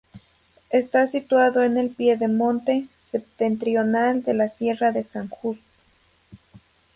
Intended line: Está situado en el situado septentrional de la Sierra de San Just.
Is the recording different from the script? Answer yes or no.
yes